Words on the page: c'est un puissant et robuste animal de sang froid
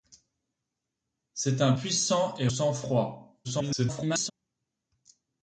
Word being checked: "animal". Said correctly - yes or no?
no